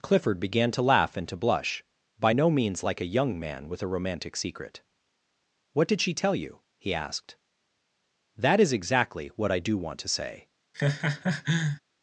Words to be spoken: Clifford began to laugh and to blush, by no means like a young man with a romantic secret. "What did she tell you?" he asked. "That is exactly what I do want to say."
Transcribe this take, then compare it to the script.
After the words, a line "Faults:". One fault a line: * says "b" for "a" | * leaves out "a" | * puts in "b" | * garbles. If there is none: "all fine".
Clifford began to laugh and to blush, by no means like a young man with a romantic secret. "What did she tell you?" he asked. "That is exactly what I do want to say."
Faults:
all fine